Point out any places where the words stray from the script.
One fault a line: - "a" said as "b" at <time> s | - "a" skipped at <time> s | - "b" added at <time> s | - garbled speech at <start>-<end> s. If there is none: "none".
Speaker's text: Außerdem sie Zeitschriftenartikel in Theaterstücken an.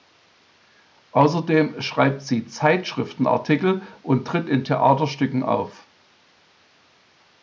- "schreibt" added at 1.8 s
- "und tritt" added at 4.0 s
- "an" said as "auf" at 5.4 s